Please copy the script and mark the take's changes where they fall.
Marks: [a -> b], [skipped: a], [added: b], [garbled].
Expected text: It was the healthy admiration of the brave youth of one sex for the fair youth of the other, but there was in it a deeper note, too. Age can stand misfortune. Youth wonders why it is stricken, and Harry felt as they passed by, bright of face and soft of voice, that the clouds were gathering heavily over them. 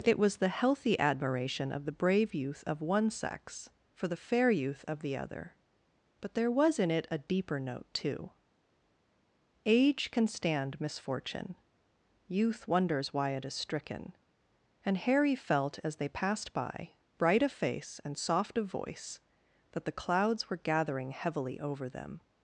It was the healthy admiration of the brave youth of one sex for the fair youth of the other, but there was in it a deeper note, too. Age can stand misfortune. Youth wonders why it is stricken, and Harry felt as they passed by, bright of face and soft of voice, that the clouds were gathering heavily over them.